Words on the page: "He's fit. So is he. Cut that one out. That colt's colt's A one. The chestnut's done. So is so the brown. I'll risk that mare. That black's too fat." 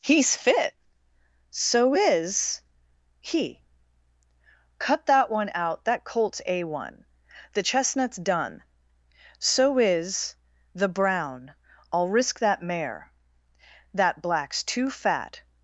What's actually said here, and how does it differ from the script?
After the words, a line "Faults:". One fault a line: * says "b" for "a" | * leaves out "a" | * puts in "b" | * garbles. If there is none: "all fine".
"He's fit. So is he. Cut that one out. That colt's A one. The chestnut's done. So is the brown. I'll risk that mare. That black's too fat."
Faults:
* leaves out "colt's"
* leaves out "so"